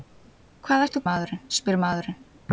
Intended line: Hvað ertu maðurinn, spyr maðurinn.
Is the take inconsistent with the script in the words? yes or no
no